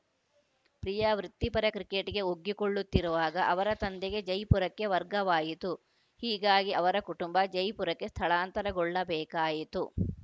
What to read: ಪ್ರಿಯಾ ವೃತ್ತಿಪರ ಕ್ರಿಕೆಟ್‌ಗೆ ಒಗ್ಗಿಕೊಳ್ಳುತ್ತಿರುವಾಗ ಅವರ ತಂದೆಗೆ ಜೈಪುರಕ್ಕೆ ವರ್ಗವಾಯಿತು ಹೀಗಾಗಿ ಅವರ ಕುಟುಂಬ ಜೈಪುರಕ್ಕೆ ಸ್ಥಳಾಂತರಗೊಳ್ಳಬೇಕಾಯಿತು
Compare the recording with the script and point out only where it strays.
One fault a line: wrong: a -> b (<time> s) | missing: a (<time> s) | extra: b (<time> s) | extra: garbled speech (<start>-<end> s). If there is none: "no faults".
no faults